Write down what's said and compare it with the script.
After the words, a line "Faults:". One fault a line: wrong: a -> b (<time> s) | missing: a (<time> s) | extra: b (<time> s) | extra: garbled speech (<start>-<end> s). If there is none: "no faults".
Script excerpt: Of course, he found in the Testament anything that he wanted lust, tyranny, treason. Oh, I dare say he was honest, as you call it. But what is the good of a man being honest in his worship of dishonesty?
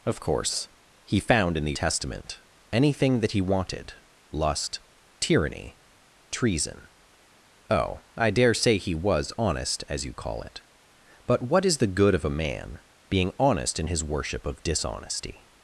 Of course, he found in the Testament anything that he wanted lust, tyranny, treason. Oh, I dare say he was honest, as you call it. But what is the good of a man being honest in his worship of dishonesty?
Faults:
no faults